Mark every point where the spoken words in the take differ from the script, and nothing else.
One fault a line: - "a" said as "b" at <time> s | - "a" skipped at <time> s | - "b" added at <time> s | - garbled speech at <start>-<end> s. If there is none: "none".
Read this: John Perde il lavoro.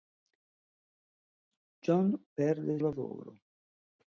none